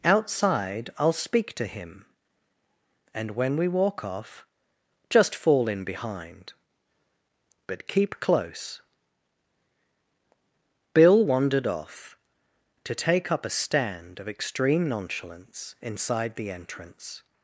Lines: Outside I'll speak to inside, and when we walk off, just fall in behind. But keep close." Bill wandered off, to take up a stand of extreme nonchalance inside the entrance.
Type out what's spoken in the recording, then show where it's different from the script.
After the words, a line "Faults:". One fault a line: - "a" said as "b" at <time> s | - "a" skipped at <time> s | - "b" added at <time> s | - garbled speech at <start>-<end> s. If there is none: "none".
Outside I'll speak to him, and when we walk off, just fall in behind. But keep close." Bill wandered off, to take up a stand of extreme nonchalance inside the entrance.
Faults:
- "inside" said as "him" at 1.7 s